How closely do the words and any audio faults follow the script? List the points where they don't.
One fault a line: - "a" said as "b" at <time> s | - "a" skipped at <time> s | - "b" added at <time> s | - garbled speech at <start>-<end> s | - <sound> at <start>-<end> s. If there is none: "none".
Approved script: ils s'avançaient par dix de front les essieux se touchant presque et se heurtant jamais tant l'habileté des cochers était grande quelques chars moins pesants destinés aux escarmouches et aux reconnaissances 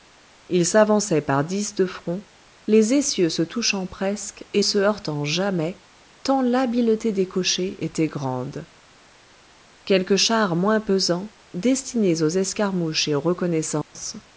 - dropout at 13.8-14.0 s